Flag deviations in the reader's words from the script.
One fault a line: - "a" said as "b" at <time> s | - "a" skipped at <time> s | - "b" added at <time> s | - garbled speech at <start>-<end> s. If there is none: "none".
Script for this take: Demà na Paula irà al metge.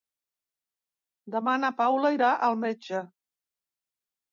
none